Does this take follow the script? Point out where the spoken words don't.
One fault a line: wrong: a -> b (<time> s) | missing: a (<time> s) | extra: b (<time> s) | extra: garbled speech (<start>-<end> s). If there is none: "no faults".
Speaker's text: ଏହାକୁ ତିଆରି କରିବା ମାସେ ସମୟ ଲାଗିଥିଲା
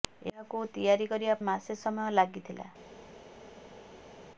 no faults